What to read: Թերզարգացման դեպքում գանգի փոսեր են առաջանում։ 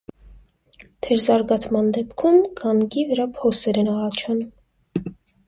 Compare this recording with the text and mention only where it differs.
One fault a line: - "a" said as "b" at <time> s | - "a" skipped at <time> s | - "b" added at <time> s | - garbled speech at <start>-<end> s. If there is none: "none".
- "վրա" added at 3.1 s